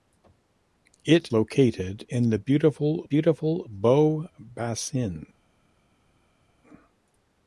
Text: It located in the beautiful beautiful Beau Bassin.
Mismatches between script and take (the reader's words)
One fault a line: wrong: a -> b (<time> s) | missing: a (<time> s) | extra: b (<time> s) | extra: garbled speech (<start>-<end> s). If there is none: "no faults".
no faults